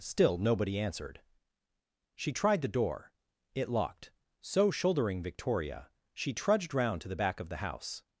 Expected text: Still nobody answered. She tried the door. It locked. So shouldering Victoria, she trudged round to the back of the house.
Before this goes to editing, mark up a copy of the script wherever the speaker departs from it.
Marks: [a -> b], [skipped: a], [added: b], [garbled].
Still nobody answered. She tried the door. It locked. So shouldering Victoria, she trudged round to the back of the house.